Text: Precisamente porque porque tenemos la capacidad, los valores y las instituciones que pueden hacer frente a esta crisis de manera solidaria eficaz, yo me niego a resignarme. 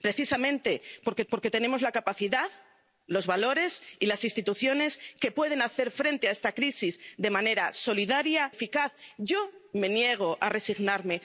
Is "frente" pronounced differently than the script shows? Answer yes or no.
no